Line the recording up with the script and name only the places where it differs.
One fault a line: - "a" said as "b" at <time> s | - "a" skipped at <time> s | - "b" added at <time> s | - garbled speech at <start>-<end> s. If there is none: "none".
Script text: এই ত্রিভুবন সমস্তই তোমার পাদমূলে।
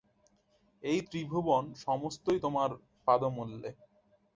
none